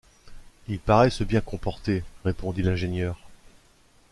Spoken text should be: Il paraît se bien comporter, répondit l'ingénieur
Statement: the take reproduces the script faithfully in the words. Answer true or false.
true